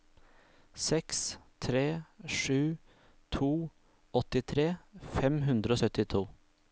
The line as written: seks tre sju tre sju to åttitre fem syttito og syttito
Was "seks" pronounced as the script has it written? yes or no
yes